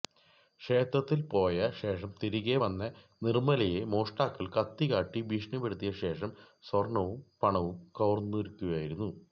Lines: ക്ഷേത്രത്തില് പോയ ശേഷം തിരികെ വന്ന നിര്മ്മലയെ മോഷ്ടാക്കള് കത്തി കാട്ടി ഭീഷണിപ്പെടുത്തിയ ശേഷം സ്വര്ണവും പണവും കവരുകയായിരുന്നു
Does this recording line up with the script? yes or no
yes